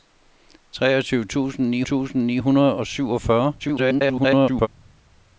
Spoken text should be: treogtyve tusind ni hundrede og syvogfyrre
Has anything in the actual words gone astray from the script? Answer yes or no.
yes